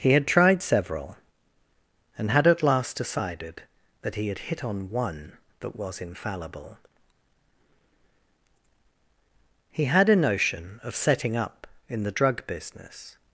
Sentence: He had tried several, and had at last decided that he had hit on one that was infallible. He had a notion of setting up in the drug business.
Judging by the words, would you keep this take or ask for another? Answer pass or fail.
pass